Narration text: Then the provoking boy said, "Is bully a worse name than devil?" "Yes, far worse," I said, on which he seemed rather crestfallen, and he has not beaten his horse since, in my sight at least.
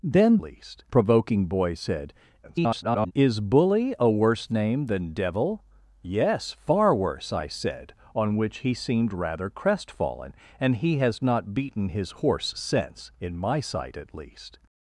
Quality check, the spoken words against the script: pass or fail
fail